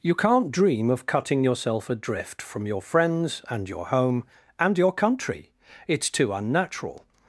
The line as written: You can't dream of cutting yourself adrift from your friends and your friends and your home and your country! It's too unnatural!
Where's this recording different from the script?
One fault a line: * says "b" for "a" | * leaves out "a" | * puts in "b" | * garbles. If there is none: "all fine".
* leaves out "friends and your"